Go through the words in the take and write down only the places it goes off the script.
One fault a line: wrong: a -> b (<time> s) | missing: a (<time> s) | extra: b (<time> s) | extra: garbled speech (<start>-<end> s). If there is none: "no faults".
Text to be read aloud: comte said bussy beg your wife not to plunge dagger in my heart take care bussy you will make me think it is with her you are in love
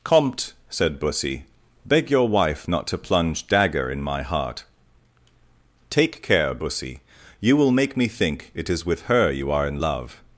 no faults